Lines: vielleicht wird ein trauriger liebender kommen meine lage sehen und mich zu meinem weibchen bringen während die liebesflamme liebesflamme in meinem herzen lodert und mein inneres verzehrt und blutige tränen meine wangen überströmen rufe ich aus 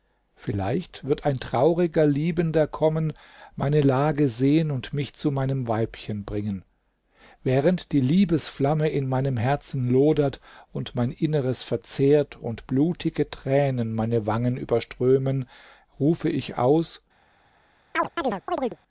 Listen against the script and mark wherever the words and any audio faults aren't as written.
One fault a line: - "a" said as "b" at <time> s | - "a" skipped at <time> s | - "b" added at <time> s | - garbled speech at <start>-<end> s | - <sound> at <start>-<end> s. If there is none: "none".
- "liebesflamme" skipped at 8.9 s
- chirp at 17.9-18.8 s